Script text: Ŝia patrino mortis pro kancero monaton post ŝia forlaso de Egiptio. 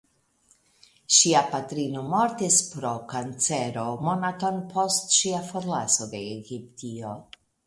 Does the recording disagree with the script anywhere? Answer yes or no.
no